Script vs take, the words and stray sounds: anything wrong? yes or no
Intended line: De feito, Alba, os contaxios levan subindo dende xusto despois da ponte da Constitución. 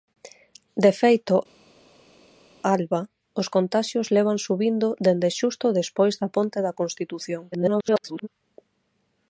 yes